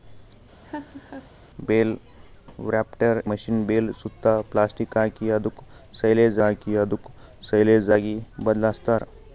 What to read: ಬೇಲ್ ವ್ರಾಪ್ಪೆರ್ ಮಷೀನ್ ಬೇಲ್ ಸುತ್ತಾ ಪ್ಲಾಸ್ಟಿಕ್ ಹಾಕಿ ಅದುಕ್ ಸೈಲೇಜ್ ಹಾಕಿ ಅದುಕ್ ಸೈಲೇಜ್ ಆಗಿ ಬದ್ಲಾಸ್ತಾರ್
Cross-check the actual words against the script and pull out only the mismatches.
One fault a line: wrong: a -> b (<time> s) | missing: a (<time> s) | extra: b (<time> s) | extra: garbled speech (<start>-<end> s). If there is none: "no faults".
no faults